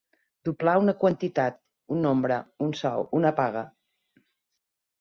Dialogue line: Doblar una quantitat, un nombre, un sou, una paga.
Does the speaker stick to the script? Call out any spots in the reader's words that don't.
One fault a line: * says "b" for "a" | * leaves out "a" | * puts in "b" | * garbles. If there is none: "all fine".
all fine